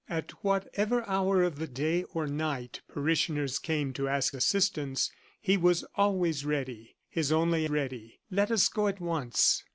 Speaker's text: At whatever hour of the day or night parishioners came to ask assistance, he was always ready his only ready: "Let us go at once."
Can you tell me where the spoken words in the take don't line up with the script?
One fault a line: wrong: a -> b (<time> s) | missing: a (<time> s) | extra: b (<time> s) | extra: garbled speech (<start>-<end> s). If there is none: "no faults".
no faults